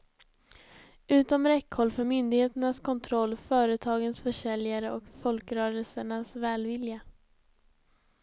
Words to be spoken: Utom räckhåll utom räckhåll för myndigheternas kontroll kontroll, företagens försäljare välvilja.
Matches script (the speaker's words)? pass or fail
fail